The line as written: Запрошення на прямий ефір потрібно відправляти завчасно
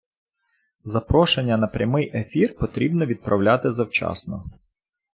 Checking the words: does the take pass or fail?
pass